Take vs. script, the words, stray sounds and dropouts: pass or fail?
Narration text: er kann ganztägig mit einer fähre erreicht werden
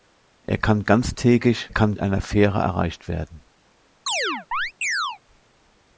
fail